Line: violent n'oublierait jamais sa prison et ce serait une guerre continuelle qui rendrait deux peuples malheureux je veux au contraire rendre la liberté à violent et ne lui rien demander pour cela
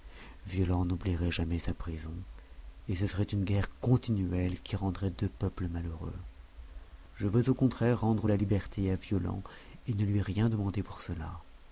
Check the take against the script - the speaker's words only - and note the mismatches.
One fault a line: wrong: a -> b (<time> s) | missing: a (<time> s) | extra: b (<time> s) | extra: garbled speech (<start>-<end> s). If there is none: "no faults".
no faults